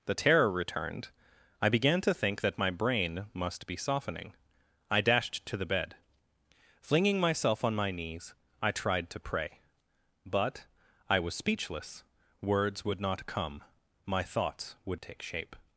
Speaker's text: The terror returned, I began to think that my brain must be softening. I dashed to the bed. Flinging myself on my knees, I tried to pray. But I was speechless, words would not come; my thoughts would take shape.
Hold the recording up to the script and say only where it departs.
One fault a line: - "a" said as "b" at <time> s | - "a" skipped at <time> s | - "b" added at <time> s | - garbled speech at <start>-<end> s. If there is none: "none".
none